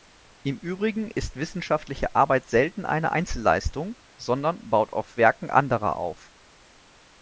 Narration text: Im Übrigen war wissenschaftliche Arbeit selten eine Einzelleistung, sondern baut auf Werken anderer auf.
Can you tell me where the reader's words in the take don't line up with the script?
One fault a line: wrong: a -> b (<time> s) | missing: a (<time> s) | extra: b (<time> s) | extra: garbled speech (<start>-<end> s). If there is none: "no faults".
wrong: war -> ist (1.1 s)